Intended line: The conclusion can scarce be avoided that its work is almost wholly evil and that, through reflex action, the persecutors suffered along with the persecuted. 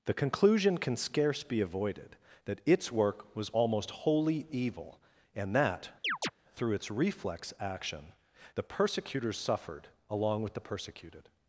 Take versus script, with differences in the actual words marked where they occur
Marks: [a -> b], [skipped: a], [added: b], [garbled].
The conclusion can scarce be avoided that its work [is -> was] almost wholly evil and that, through [added: its] reflex action, the persecutors suffered along with the persecuted.